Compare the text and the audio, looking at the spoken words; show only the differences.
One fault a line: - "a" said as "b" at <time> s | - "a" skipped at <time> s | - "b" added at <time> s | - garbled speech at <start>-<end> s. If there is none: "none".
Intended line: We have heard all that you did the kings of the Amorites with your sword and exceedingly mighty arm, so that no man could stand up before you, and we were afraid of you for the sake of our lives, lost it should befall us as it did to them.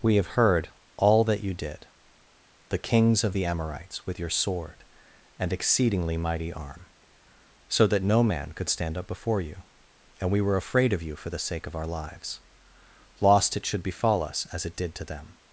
none